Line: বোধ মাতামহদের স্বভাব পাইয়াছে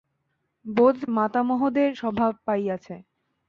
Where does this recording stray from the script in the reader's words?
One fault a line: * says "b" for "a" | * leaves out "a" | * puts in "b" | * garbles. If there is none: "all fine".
all fine